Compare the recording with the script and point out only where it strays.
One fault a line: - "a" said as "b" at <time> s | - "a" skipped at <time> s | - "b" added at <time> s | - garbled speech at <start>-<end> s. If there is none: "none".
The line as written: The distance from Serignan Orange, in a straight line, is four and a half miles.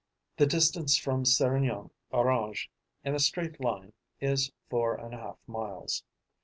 none